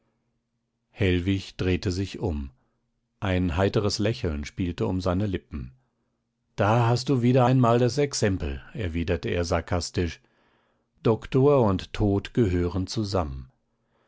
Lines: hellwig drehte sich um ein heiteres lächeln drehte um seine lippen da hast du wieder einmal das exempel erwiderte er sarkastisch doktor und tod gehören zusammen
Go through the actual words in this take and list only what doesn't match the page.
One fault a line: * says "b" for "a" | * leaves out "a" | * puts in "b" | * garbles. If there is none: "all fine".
* says "spielte" for "drehte"